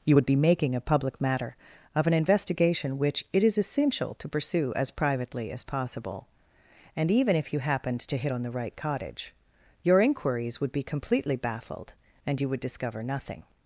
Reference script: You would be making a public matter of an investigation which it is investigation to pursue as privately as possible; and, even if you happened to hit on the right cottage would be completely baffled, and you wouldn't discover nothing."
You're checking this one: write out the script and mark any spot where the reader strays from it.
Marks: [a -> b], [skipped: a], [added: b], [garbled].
You would be making a public matter of an investigation which it is [investigation -> essential] to pursue as privately as possible; and, even if you happened to hit on the right cottage [added: your inquiries] would be completely baffled, and you [wouldn't -> would] discover nothing."